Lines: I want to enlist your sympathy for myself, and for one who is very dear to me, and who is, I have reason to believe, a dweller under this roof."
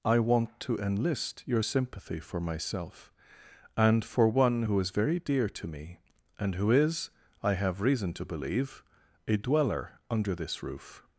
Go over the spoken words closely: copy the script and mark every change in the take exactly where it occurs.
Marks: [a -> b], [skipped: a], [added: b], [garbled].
I want to enlist your sympathy for myself, and for one who is very dear to me, and who is, I have reason to believe, a dweller under this roof."